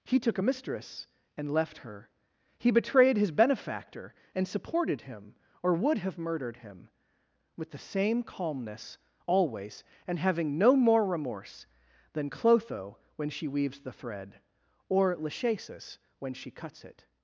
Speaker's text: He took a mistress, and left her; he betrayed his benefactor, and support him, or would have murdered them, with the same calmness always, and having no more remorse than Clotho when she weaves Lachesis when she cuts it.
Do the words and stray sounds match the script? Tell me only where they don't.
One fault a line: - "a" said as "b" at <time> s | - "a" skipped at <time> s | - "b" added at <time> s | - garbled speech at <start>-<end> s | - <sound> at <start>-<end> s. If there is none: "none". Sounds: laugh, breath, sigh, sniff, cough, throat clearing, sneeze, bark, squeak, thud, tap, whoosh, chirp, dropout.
- "support" said as "supported" at 4.5 s
- "them" said as "him" at 6.6 s
- "the thread or" added at 13.8 s